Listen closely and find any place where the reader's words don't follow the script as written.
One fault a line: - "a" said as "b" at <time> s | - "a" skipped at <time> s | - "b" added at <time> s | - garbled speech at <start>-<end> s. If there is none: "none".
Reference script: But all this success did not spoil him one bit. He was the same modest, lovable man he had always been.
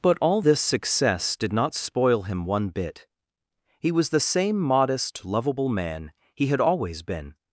none